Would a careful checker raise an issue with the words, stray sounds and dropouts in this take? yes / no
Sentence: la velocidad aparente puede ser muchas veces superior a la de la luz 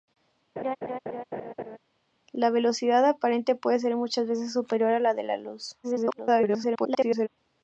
yes